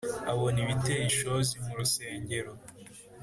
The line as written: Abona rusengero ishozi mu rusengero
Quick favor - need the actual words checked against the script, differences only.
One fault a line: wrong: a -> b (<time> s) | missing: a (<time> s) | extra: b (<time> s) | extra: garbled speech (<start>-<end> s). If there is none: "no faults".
wrong: rusengero -> ibiteye (0.6 s)